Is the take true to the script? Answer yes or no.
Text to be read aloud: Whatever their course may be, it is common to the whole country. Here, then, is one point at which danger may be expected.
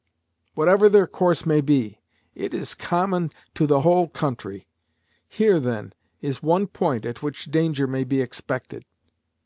yes